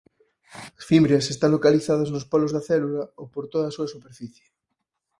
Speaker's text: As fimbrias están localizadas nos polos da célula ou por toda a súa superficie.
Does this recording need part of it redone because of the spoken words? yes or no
no